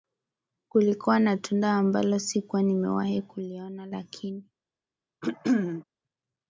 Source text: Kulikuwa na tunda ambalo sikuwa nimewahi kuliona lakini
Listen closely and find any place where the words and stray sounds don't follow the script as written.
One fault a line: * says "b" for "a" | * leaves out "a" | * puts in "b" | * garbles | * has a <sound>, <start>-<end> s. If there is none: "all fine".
* has a throat clearing, 5.2-5.8 s